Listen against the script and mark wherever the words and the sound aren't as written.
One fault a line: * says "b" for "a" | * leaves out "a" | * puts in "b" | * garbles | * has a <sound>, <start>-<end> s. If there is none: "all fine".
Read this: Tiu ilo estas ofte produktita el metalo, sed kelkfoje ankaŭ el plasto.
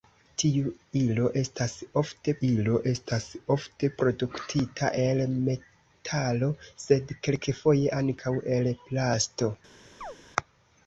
* puts in "ilo estas ofte"
* has a chirp, 10.0-10.2 s